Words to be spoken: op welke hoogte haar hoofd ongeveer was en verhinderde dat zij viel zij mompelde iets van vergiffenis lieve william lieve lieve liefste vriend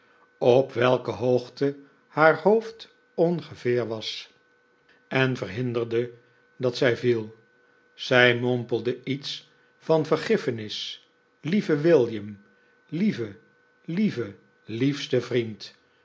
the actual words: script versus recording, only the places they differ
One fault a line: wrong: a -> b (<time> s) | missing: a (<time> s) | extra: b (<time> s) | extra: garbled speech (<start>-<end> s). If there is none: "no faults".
no faults